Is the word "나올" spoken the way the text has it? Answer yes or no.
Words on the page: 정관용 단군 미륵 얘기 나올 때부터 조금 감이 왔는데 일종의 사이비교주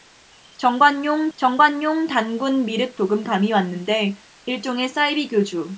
no